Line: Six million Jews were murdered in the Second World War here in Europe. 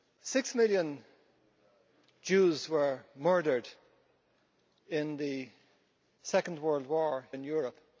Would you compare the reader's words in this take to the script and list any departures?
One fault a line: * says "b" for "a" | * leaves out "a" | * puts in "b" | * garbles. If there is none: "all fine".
* leaves out "here"